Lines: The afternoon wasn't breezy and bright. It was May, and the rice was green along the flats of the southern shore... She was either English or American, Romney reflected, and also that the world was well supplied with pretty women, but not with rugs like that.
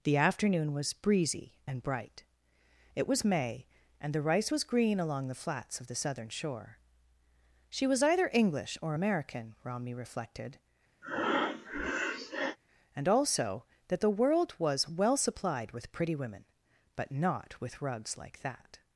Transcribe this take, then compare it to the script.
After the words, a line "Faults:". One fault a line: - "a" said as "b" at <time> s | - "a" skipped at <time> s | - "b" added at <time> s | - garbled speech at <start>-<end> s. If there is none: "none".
The afternoon was breezy and bright. It was May, and the rice was green along the flats of the southern shore... She was either English or American, Romney reflected, and also that the world was well supplied with pretty women, but not with rugs like that.
Faults:
- "wasn't" said as "was" at 0.7 s